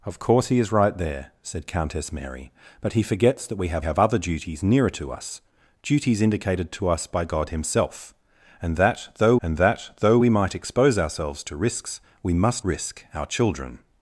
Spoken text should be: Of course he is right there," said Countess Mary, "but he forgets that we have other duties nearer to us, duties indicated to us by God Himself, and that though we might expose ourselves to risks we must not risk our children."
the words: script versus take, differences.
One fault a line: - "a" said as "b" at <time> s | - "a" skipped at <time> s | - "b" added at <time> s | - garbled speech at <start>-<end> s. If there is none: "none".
- "have" added at 3.8 s
- "and that though" added at 9.4 s
- "not" skipped at 12.6 s